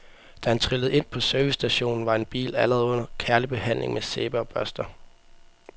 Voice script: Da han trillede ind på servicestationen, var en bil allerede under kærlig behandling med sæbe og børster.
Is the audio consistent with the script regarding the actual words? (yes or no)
yes